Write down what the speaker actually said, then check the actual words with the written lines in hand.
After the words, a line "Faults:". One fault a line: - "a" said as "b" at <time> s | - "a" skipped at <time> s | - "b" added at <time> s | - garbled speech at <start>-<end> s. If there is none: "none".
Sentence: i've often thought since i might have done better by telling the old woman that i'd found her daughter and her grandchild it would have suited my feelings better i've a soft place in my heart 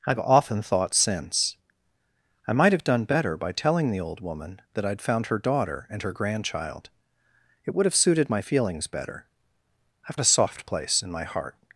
i've often thought since i might have done better by telling the old woman that i'd found her daughter and her grandchild it would have suited my feelings better i've a soft place in my heart
Faults:
none